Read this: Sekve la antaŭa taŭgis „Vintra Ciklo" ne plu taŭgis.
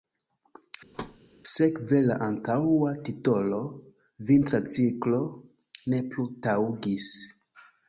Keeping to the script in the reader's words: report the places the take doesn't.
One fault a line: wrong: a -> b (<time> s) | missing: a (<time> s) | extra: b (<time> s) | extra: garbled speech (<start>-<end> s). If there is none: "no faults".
wrong: taŭgis -> titolo (3.1 s)